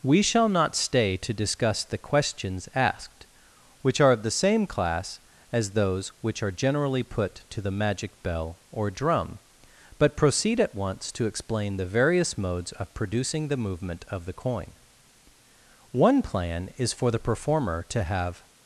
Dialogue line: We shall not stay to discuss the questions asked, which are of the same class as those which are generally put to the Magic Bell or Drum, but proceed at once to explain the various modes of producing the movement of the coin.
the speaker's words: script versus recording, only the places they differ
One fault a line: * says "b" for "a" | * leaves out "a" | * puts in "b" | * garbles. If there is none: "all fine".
* puts in "One plan is for the performer to have"